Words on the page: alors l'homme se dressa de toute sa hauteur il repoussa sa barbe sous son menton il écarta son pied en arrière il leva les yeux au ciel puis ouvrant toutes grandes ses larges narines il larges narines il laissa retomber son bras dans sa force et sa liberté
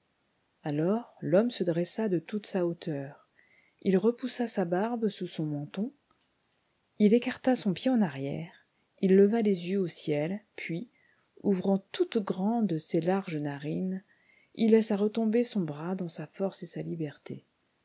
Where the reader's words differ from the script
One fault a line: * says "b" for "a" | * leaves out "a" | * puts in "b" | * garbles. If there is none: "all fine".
* leaves out "larges narines il"